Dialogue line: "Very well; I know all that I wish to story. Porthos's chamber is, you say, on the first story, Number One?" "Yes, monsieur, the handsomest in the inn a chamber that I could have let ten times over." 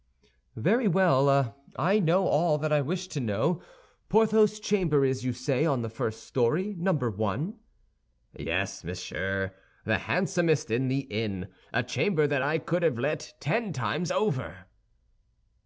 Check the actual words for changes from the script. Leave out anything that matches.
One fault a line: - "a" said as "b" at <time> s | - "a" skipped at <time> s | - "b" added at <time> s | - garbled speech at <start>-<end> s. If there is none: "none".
- "story" said as "know" at 3.2 s